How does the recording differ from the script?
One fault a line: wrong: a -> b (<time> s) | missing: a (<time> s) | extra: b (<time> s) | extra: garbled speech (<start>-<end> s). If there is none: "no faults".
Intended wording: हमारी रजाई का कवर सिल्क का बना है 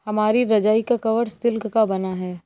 no faults